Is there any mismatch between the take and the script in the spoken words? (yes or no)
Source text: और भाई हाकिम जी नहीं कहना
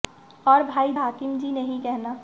no